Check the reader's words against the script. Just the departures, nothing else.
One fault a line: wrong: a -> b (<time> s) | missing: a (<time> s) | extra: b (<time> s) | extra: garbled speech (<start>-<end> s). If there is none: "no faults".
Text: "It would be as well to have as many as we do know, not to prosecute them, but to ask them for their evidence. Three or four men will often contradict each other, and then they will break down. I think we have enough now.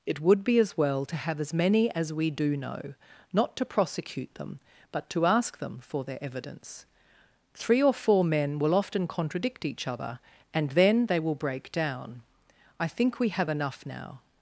no faults